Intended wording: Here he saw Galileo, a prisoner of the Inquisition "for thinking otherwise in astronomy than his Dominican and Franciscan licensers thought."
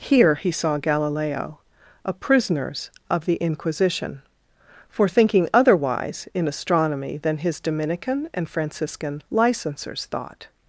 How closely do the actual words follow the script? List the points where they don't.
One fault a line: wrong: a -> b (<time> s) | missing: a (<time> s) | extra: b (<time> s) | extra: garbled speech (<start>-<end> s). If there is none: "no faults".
wrong: prisoner -> prisoners (2.1 s)